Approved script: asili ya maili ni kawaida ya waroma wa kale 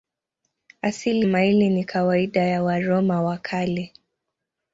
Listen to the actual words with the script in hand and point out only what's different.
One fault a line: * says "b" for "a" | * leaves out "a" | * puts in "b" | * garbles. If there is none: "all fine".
* leaves out "ya"